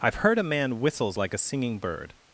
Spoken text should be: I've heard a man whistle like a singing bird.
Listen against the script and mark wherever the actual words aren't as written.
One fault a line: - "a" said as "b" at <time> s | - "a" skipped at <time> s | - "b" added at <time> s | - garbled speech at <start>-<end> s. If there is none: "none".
- "whistle" said as "whistles" at 0.8 s